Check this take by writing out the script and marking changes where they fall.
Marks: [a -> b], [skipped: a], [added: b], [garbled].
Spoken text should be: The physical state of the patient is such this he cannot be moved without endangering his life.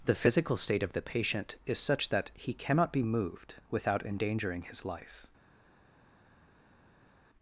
The physical state of the patient is such [this -> that] he cannot be moved without endangering his life.